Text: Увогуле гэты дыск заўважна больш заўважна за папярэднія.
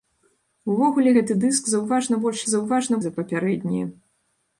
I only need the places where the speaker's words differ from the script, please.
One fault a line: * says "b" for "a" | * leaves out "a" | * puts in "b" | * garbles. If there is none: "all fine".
all fine